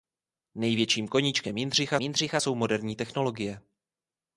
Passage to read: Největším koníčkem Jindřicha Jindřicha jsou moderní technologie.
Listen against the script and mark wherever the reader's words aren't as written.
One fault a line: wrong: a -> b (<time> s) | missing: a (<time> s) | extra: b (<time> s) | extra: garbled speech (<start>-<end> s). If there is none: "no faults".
no faults